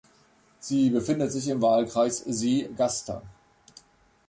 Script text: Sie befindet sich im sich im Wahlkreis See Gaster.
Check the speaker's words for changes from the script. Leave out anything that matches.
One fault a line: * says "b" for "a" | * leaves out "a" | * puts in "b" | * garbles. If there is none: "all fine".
* leaves out "sich im"